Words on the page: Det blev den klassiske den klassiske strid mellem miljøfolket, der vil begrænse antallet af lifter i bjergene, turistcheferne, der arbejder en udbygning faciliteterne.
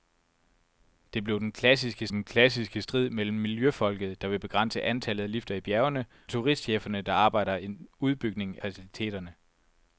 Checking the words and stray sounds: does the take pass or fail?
pass